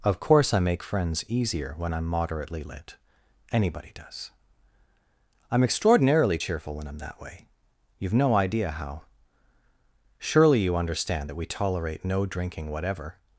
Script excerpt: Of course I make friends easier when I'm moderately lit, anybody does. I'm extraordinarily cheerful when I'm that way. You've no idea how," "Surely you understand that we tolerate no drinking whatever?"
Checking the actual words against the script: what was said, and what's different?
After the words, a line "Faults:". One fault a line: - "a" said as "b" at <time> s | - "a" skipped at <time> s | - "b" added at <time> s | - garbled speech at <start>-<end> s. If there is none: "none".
Of course I make friends easier when I'm moderately lit, anybody does. I'm extraordinarily cheerful when I'm that way. You've no idea how," "Surely you understand that we tolerate no drinking whatever?"
Faults:
none